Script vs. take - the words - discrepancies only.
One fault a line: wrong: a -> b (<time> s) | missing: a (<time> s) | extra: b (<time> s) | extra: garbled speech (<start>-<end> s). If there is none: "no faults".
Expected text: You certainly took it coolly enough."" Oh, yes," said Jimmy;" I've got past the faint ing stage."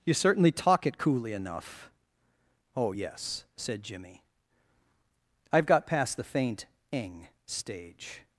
wrong: took -> talk (0.5 s)